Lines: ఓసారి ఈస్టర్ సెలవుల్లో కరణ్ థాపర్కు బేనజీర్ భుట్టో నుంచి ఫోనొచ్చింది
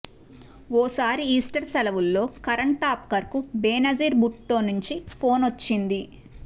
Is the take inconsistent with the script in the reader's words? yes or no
no